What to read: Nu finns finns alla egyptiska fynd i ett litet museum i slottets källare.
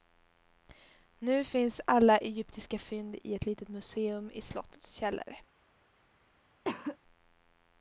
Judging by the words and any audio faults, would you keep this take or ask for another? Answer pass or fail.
fail